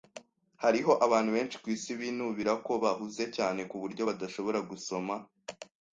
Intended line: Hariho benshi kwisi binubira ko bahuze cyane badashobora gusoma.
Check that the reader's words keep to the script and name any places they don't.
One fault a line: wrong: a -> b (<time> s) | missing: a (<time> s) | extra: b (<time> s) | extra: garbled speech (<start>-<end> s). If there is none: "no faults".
extra: abantu (1.1 s)
extra: kuburyo (3.7 s)